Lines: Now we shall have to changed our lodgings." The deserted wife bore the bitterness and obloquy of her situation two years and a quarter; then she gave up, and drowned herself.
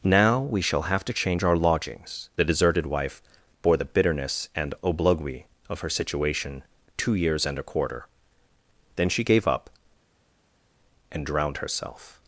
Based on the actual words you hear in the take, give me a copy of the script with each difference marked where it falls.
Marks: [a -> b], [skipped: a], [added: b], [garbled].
Now we shall have to [changed -> change] our lodgings." The deserted wife bore the bitterness and obloquy of her situation two years and a quarter; then she gave up, and drowned herself.